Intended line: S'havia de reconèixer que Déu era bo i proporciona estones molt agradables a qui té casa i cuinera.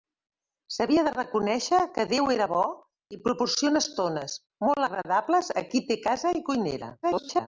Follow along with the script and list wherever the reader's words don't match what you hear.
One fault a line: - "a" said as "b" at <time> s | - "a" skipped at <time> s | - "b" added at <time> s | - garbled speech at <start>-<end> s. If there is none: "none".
- garbled speech at 7.0-7.5 s